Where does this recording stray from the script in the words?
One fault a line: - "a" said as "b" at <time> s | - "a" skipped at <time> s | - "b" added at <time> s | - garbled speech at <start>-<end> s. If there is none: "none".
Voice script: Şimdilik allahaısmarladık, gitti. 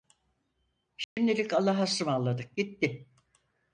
none